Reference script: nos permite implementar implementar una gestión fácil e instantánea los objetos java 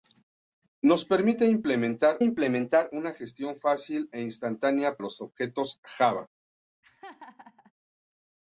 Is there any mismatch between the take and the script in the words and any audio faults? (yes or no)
yes